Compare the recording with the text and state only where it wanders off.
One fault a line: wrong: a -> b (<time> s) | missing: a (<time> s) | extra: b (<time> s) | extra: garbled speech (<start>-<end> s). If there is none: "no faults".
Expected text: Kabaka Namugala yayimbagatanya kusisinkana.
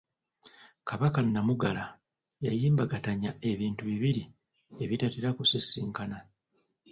extra: ebintu bibiri ebitatera (3.5 s)